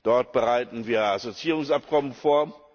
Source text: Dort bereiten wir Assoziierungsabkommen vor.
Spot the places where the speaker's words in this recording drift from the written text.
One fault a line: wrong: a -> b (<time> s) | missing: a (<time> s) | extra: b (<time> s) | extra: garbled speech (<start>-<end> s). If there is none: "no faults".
no faults